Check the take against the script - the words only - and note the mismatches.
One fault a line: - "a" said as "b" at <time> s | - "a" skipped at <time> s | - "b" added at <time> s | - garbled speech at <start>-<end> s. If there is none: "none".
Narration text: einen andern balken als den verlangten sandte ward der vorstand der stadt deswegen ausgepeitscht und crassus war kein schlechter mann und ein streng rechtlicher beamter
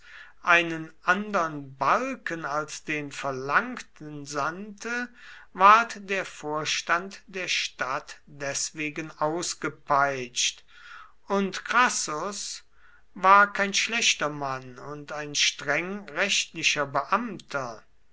none